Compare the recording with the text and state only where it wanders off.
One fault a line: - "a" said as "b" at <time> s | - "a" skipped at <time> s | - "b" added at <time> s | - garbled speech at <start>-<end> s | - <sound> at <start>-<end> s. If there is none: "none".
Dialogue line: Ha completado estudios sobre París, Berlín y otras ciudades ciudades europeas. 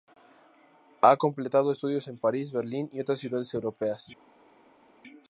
- "sobre" said as "en" at 2.1 s
- "ciudades" skipped at 3.5 s